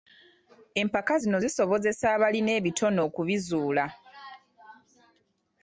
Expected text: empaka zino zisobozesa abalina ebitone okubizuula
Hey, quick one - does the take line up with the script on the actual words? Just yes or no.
yes